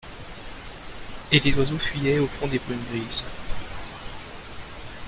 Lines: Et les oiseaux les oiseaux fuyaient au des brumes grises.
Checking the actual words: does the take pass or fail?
fail